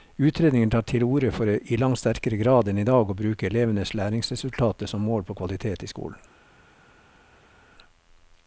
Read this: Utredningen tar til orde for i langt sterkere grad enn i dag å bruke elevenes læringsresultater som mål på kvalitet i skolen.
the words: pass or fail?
pass